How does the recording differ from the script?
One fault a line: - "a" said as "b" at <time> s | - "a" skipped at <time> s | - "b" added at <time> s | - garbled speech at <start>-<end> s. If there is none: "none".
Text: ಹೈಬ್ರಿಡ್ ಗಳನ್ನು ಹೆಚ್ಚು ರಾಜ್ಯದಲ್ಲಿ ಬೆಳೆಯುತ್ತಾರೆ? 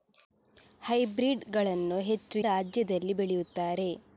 none